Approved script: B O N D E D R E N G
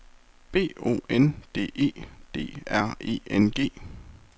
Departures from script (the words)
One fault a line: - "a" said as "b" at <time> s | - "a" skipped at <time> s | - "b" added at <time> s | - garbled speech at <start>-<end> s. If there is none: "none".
none